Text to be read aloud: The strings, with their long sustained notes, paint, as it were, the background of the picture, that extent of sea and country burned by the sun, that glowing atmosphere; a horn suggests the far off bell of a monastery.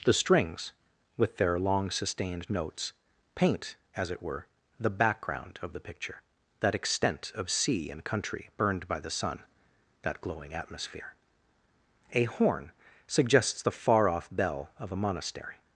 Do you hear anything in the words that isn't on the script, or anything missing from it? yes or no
no